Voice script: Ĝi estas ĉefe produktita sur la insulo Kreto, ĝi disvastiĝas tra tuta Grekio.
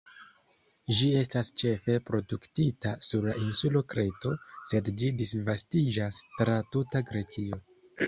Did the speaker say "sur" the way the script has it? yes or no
yes